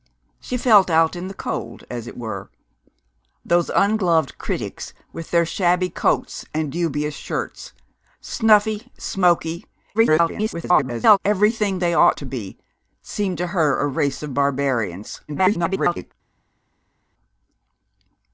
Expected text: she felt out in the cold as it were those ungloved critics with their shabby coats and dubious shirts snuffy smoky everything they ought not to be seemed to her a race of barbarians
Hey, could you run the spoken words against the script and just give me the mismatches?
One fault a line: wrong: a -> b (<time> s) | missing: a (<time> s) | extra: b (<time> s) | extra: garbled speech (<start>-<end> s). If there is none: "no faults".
extra: garbled speech (9.9-11.2 s)
missing: not (12.2 s)
extra: garbled speech (15.3-16.1 s)